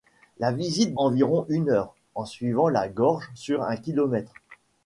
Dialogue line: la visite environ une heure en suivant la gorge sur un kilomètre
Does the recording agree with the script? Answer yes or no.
yes